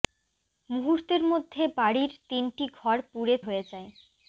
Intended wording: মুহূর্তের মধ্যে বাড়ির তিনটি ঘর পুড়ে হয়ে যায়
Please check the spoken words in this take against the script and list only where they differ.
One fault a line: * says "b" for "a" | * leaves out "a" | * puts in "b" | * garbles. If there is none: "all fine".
all fine